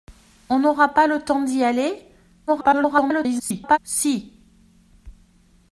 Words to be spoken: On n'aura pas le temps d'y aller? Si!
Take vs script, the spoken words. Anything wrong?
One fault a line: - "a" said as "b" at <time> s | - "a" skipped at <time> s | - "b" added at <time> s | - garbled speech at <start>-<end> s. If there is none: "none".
- garbled speech at 2.5-3.8 s